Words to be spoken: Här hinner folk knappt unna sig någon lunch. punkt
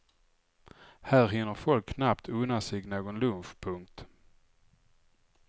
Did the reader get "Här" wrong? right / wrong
right